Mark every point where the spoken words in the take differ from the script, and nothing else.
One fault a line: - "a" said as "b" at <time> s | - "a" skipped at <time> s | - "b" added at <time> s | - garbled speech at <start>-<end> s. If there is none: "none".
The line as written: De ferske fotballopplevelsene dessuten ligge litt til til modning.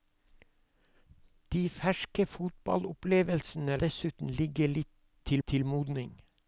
none